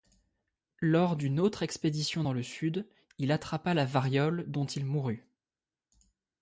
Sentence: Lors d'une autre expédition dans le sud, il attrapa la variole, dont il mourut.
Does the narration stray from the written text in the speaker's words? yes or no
no